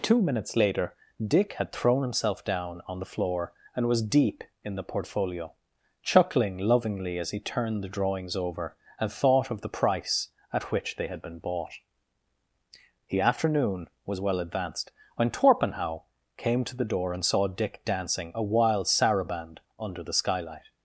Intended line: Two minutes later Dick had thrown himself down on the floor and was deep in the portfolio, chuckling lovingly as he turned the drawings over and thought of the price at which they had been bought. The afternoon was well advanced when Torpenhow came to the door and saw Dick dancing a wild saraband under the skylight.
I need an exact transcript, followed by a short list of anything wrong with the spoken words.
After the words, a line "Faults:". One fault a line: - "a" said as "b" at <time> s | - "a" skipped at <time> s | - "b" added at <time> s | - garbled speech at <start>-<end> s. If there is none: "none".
Two minutes later Dick had thrown himself down on the floor and was deep in the portfolio, chuckling lovingly as he turned the drawings over and thought of the price at which they had been bought. The afternoon was well advanced when Torpenhow came to the door and saw Dick dancing a wild saraband under the skylight.
Faults:
none